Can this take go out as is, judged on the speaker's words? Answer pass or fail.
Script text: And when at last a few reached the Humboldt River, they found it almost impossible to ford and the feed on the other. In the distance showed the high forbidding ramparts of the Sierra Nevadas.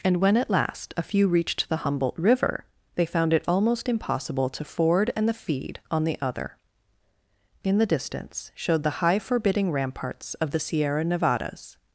pass